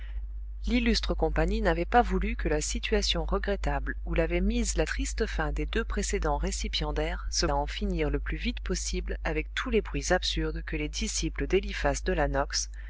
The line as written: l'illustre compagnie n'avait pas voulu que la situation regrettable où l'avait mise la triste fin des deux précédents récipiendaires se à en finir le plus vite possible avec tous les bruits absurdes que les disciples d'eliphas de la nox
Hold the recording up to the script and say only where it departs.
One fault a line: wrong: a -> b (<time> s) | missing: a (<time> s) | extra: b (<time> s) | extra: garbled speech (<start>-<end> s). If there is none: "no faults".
no faults